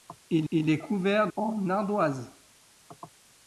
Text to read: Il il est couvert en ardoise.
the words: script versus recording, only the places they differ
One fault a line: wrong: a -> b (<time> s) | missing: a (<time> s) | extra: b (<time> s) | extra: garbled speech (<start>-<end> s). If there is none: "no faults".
no faults